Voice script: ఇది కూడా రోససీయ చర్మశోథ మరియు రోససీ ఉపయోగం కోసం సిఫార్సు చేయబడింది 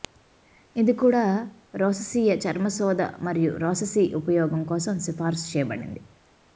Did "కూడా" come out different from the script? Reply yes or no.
no